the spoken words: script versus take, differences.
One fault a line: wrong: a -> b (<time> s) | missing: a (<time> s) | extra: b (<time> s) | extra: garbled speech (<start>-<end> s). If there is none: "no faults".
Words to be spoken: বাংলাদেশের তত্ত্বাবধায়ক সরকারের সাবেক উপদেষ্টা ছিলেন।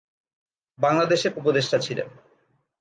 missing: তত্ত্বাবধায়ক সরকারের সাবেক (1.3 s)